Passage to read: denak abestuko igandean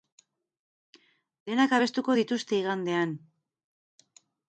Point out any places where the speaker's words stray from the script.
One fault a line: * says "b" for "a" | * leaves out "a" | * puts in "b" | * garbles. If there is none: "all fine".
* puts in "dituzte"